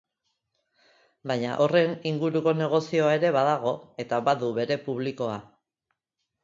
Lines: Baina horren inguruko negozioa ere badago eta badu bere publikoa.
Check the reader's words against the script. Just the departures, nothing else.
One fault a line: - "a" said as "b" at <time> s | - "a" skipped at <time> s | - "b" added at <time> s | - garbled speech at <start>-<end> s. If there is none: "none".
none